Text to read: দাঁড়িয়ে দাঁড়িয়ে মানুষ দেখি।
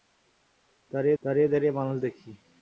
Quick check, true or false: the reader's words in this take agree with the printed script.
false